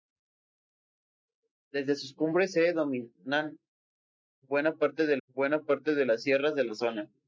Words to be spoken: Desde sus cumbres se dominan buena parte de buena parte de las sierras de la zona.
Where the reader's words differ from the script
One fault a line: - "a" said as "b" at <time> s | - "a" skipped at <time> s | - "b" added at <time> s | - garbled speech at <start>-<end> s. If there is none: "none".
none